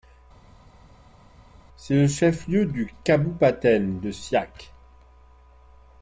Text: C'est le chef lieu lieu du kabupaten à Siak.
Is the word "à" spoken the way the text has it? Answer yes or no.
no